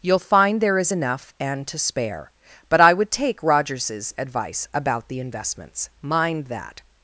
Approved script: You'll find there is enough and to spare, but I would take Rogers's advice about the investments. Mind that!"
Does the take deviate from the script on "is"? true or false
false